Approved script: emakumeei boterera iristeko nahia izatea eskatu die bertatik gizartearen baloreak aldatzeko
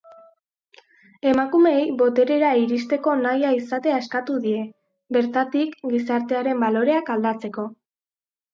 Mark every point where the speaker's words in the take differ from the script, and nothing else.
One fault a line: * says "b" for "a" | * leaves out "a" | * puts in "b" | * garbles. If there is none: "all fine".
all fine